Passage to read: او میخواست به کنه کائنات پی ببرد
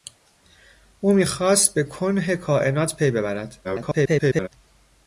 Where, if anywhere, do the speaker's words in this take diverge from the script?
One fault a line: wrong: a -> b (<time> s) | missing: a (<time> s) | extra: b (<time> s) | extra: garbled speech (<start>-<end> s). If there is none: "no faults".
extra: garbled speech (3.6-4.5 s)